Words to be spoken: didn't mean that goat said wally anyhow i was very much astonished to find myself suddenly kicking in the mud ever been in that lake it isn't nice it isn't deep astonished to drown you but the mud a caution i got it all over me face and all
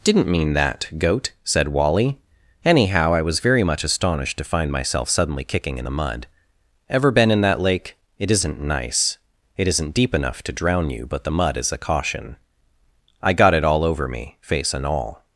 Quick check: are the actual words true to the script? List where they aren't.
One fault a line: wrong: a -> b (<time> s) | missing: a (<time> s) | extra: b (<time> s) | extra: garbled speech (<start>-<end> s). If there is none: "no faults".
wrong: astonished -> enough (10.1 s)
extra: is (11.6 s)